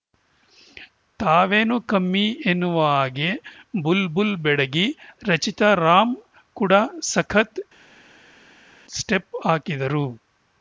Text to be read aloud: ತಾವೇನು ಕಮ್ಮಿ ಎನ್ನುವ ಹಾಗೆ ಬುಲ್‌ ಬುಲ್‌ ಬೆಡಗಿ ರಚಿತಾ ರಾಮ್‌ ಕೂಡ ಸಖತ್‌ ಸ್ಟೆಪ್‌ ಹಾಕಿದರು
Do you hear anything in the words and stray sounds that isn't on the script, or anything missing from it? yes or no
no